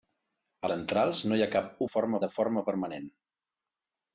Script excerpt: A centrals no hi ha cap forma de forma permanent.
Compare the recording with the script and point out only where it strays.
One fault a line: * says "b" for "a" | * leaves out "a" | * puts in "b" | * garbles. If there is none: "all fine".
all fine